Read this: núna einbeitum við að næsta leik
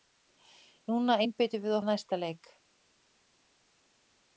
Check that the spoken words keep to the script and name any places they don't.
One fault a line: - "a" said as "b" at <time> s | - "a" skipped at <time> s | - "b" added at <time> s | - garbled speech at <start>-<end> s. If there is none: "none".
none